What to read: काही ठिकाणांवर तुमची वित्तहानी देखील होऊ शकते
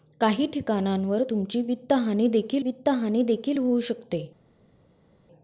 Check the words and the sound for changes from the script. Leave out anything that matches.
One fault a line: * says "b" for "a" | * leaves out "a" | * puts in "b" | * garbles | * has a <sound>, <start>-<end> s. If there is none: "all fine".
* puts in "वित्तहानी देखील"